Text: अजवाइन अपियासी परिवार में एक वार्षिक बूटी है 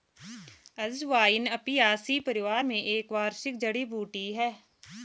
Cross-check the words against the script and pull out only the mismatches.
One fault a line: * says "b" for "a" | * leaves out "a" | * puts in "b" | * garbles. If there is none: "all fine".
* puts in "जड़ी"